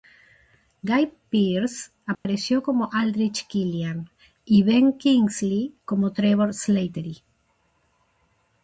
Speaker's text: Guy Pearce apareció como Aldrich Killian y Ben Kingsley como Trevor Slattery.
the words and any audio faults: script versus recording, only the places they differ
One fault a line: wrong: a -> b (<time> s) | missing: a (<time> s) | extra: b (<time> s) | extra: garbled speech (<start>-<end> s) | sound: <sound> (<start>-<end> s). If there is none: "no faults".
sound: dropout (2.1-2.3 s)